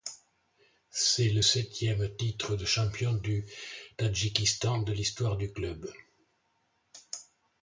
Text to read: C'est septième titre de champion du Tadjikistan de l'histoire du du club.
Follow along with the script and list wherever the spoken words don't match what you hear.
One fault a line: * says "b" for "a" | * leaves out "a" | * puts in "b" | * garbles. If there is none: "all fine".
* puts in "le"
* leaves out "du"